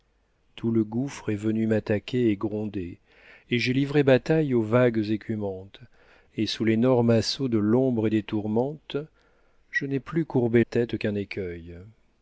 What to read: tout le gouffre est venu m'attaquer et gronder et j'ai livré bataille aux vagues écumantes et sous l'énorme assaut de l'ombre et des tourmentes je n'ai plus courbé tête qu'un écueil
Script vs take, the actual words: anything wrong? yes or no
no